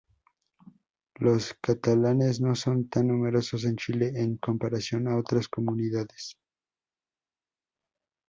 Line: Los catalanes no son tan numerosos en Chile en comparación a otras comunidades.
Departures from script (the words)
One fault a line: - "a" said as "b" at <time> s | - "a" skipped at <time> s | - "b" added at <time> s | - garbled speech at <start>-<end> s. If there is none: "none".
none